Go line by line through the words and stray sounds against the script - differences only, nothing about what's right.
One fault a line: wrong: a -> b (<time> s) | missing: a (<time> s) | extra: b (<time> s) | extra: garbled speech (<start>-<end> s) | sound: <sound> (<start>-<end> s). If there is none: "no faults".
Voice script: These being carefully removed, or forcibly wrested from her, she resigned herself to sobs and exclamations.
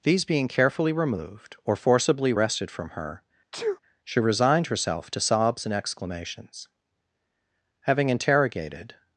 sound: sneeze (3.5-3.8 s)
extra: Having interrogated (7.8 s)